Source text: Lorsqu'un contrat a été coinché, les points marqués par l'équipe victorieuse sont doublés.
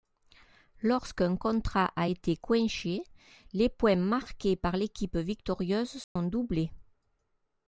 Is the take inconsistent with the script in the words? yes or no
no